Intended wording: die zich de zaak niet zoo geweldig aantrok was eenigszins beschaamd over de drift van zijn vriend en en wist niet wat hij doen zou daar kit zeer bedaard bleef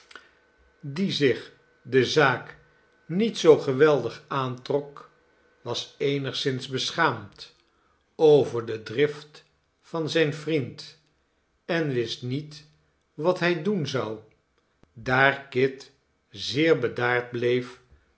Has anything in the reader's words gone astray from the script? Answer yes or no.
yes